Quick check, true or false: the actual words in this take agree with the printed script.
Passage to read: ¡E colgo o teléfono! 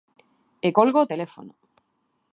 true